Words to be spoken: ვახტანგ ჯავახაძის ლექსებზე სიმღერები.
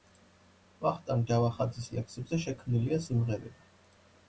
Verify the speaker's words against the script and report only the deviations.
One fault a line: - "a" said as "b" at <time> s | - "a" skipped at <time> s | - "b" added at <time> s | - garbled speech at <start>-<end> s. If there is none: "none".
- "შექმნილია" added at 2.5 s